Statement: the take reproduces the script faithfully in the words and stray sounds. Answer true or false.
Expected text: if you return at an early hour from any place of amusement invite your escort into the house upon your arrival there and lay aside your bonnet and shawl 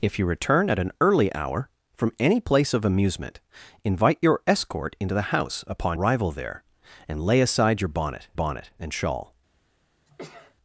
false